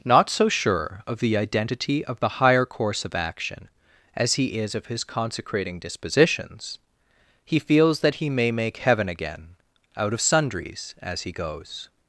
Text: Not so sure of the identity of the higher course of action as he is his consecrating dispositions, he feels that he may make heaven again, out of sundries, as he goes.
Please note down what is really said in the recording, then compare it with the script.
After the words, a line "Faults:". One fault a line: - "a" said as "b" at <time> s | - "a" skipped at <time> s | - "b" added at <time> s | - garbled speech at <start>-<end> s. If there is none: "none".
Not so sure of the identity of the higher course of action as he is of his consecrating dispositions, he feels that he may make heaven again, out of sundries, as he goes.
Faults:
- "of" added at 4.8 s